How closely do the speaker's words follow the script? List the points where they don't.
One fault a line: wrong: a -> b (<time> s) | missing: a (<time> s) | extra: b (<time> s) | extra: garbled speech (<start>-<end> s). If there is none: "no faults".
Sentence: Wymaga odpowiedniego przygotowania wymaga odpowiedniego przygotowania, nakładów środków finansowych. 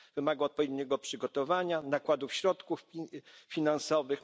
missing: wymaga odpowiedniego przygotowania (1.8 s)